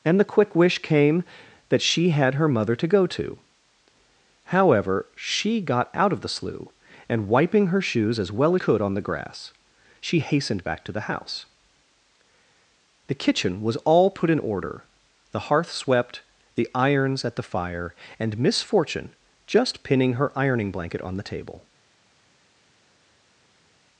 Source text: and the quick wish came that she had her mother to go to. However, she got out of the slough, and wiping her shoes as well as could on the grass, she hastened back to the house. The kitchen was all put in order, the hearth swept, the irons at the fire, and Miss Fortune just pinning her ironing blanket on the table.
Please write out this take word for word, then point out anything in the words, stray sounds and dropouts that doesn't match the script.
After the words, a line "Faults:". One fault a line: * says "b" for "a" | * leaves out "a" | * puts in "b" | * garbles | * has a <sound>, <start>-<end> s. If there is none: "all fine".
and the quick wish came that she had her mother to go to. However, she got out of the slough, and wiping her shoes as well as could on the grass, she hastened back to the house. The kitchen was all put in order, the hearth swept, the irons at the fire, and Miss Fortune just pinning her ironing blanket on the table.
Faults:
all fine